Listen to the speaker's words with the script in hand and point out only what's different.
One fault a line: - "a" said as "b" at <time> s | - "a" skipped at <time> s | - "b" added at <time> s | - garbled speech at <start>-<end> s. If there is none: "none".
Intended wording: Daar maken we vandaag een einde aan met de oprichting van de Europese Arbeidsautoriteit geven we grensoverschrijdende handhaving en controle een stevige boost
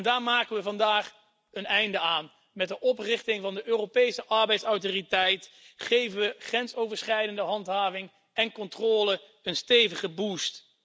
none